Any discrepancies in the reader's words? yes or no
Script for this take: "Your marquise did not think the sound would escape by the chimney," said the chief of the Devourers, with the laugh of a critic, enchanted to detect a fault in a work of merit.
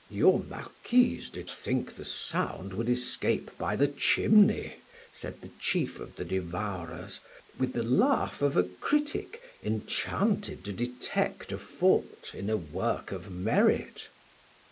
yes